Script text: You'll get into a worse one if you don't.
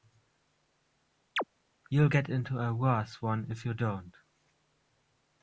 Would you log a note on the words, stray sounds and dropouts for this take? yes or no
yes